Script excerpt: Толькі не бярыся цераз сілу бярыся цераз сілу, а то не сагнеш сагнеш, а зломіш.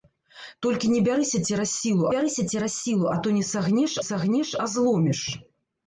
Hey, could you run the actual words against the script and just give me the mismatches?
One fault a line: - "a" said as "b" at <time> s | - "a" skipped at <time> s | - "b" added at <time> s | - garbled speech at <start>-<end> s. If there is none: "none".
none